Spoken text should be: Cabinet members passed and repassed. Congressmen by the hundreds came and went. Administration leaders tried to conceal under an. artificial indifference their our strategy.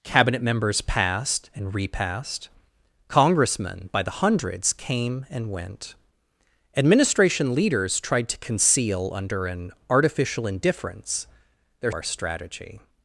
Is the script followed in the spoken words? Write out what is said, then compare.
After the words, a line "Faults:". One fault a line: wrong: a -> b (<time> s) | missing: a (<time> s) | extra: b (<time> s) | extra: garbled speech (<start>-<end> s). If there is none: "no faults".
Cabinet members passed and repassed. Congressmen by the hundreds came and went. Administration leaders tried to conceal under an. artificial indifference their our strategy.
Faults:
no faults